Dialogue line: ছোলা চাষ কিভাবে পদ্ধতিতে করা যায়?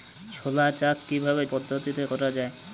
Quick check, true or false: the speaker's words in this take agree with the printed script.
true